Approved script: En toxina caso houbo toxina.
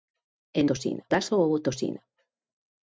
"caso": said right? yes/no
yes